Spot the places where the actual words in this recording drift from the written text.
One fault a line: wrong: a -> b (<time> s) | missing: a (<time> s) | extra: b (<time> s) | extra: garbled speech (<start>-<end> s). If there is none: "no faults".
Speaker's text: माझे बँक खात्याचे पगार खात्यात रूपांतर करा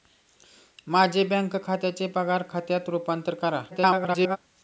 extra: garbled speech (3.7-4.4 s)